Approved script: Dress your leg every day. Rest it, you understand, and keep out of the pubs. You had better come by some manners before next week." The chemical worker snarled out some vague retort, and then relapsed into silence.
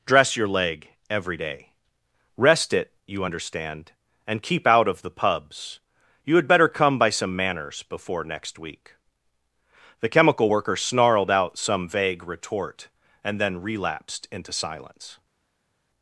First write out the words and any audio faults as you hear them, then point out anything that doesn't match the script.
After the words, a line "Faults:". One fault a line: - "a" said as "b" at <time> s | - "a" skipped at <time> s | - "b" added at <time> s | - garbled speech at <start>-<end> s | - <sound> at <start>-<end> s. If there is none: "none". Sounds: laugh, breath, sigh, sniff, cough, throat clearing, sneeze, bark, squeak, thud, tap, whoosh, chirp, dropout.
Dress your leg every day. Rest it, you understand, and keep out of the pubs. You had better come by some manners before next week." The chemical worker snarled out some vague retort, and then relapsed into silence.
Faults:
none